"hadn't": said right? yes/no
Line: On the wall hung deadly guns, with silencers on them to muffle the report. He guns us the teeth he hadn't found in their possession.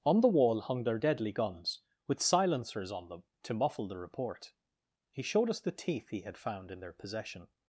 no